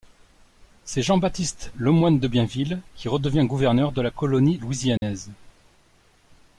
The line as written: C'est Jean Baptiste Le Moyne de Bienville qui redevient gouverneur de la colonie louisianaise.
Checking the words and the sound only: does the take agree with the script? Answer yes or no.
no